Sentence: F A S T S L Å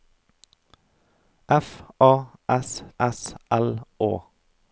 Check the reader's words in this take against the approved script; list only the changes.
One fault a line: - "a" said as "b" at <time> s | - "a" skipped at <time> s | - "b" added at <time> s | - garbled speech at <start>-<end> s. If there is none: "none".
- "T" skipped at 2.8 s